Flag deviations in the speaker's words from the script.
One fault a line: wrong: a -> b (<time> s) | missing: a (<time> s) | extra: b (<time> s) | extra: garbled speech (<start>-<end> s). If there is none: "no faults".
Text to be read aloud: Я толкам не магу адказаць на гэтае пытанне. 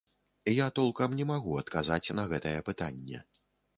no faults